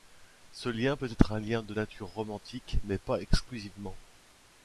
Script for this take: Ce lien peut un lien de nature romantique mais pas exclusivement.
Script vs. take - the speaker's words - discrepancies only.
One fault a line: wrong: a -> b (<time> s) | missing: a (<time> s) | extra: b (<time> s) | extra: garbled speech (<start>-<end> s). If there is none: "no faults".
extra: être (1.1 s)